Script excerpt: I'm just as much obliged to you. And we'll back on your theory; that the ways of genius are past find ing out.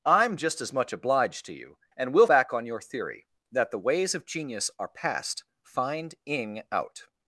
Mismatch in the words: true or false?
false